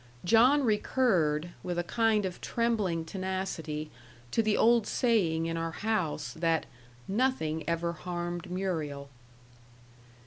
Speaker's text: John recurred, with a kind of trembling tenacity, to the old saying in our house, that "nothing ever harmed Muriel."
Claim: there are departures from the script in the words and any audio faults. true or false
false